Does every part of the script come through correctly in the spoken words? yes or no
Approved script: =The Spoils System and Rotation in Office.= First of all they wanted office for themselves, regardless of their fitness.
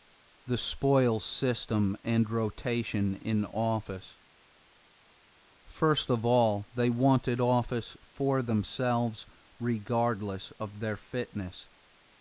yes